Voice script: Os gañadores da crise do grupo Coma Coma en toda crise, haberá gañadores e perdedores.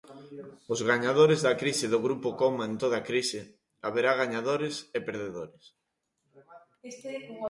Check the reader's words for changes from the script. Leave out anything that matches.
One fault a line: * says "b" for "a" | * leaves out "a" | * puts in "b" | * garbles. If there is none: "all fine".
* leaves out "Coma"